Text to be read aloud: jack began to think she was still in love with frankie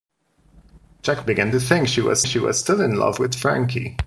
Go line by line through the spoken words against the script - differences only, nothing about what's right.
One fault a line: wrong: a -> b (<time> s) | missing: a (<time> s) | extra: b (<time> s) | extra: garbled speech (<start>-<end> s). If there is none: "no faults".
extra: she was (2.2 s)